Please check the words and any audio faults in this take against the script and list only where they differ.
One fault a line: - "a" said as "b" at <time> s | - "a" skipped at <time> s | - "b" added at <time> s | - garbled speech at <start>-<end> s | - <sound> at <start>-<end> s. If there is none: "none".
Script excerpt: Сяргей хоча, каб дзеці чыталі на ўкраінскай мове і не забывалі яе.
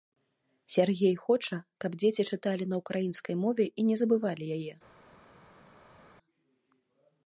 none